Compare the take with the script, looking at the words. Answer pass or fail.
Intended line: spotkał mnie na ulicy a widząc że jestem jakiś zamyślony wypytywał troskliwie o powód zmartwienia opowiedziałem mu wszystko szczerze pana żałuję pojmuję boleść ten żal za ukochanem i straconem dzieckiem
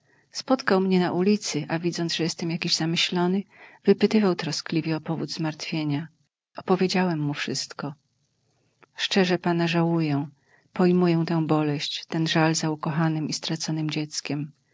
fail